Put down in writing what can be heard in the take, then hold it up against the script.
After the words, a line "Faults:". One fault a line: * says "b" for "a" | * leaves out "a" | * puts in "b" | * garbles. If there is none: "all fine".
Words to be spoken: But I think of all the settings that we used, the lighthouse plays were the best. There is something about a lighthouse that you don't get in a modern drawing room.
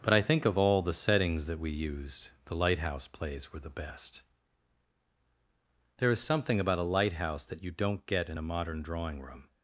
But I think of all the settings that we used, the lighthouse plays were the best. There is something about a lighthouse that you don't get in a modern drawing room.
Faults:
all fine